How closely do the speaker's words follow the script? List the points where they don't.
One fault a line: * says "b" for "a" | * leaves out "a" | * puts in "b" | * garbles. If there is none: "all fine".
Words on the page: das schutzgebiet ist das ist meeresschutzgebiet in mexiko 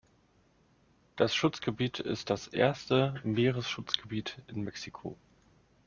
* says "erste" for "ist"